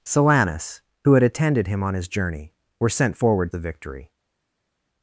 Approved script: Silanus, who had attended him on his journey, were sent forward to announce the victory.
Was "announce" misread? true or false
true